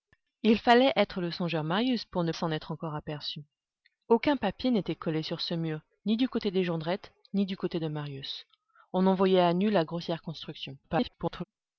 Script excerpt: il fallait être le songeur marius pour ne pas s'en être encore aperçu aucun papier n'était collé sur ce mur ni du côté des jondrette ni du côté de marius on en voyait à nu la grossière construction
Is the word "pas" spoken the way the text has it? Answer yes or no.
no